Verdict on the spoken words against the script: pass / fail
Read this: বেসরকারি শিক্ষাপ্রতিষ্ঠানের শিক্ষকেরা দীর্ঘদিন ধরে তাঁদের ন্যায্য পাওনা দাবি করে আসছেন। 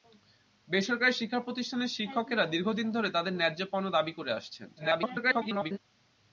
fail